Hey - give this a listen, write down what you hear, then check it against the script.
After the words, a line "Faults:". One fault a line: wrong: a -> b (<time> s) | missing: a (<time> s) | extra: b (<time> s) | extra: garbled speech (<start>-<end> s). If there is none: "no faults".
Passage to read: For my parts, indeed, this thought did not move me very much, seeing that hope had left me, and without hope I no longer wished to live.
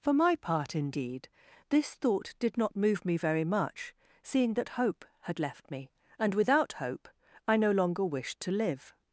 For my part, indeed, this thought did not move me very much, seeing that hope had left me, and without hope I no longer wished to live.
Faults:
wrong: parts -> part (0.3 s)